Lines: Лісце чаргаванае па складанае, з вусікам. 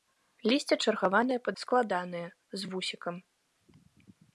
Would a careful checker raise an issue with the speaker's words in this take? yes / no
no